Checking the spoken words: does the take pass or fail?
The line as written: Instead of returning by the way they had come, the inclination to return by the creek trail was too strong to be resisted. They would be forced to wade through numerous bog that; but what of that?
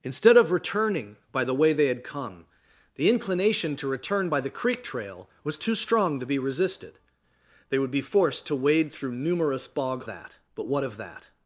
pass